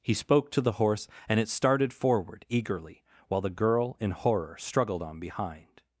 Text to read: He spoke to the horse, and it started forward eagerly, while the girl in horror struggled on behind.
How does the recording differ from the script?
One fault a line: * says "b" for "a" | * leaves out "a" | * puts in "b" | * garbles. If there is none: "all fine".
all fine